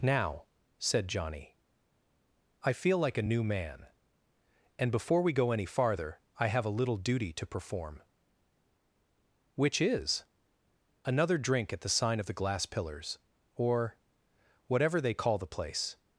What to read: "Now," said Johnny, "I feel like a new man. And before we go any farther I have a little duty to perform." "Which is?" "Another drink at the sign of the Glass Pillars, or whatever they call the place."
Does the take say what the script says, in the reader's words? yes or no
yes